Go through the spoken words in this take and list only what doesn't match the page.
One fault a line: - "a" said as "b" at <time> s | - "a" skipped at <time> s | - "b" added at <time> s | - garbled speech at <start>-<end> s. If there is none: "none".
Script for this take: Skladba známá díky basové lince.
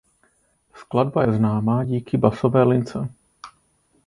- "je" added at 1.2 s